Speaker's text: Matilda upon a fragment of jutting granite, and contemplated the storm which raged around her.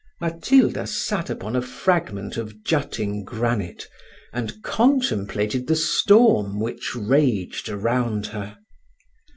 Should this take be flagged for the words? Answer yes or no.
yes